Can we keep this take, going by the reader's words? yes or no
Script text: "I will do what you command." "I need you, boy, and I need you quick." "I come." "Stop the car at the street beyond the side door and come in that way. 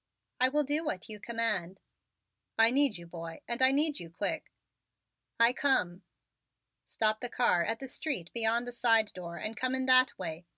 yes